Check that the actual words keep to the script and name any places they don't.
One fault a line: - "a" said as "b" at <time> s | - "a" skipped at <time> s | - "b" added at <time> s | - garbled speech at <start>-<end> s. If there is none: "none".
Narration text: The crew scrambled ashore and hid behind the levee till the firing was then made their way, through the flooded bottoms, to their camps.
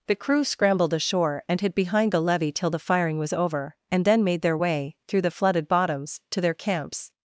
- "over and" added at 3.3 s